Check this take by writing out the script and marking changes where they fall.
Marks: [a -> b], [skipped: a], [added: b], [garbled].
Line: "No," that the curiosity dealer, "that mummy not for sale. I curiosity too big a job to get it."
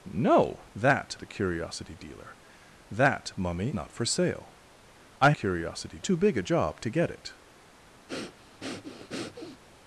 "No," that the curiosity dealer, "that mummy not for sale. I curiosity too big a job to get it."